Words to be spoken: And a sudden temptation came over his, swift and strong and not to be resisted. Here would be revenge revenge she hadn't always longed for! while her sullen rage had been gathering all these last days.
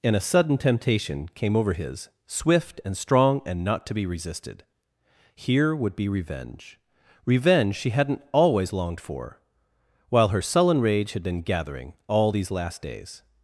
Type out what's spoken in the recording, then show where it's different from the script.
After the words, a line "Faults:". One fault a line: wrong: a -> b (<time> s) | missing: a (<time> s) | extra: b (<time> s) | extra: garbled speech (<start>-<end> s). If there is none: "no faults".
And a sudden temptation came over his, swift and strong and not to be resisted. Here would be revenge revenge she hadn't always longed for! while her sullen rage had been gathering all these last days.
Faults:
no faults